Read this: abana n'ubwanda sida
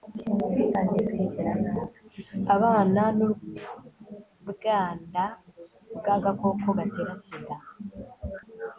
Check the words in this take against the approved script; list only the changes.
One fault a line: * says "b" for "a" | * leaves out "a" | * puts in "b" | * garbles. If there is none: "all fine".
* puts in "bw'agakoko gatera"